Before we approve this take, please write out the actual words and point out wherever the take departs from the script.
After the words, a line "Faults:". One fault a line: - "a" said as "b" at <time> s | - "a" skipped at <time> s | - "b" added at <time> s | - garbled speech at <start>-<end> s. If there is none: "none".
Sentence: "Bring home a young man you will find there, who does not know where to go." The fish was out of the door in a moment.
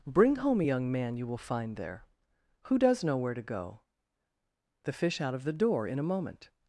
"Bring home a young man you will find there, who does know where to go." The fish out of the door in a moment.
Faults:
- "not" skipped at 3.0 s
- "was" skipped at 5.2 s